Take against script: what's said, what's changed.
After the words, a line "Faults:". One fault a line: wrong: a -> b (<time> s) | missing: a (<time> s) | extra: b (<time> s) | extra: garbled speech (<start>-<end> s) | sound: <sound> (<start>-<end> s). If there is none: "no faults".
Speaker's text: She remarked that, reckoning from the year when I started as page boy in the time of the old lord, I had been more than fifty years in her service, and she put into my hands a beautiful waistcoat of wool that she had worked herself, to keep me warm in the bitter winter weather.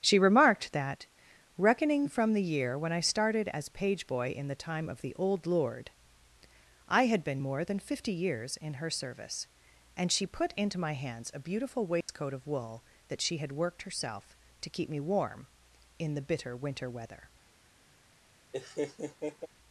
She remarked that, reckoning from the year when I started as page boy in the time of the old lord, I had been more than fifty years in her service, and she put into my hands a beautiful waistcoat of wool that she had worked herself, to keep me warm in the bitter winter weather.
Faults:
sound: dropout (12.0-12.1 s)
sound: laugh (18.5-19.5 s)